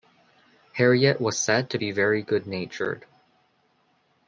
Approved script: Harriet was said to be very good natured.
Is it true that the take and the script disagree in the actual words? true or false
false